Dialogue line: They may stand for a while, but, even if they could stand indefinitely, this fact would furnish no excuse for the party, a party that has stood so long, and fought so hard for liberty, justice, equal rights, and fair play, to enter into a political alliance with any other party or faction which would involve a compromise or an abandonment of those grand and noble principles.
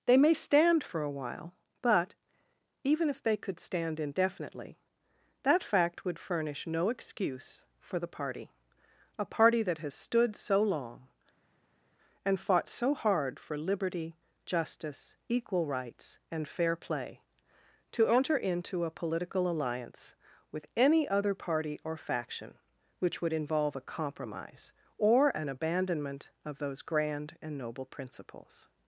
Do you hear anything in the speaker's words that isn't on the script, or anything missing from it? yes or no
yes